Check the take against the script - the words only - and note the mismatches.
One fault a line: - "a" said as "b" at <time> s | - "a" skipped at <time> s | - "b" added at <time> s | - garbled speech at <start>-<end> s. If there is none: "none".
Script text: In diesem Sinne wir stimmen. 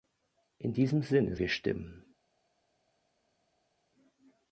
none